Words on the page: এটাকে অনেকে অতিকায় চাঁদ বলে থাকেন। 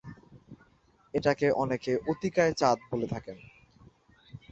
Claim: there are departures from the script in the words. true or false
false